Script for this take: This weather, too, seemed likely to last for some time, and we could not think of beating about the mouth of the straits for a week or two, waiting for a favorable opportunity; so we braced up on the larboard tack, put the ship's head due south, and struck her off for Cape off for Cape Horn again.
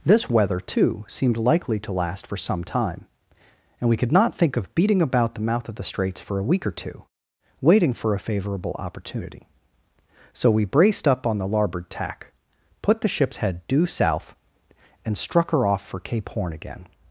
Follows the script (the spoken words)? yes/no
no